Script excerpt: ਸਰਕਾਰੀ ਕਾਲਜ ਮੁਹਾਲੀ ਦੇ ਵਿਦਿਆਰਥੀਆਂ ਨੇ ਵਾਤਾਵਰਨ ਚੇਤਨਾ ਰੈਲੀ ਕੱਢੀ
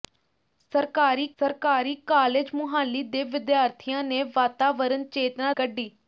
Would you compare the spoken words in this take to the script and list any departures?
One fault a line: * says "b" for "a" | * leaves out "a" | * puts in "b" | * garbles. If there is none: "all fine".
* puts in "ਸਰਕਾਰੀ"
* leaves out "ਰੈਲੀ"